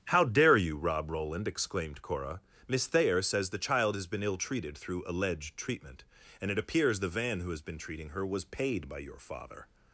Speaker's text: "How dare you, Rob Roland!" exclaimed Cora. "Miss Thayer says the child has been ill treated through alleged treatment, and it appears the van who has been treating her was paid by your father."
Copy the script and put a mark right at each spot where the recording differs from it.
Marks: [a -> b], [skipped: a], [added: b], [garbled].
"How dare you, Rob Roland!" exclaimed Cora. "Miss Thayer says the child has been ill treated through alleged treatment, and it appears the van who has been treating her was paid by your father."